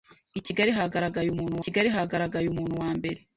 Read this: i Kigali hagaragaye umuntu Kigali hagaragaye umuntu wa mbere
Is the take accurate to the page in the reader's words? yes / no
yes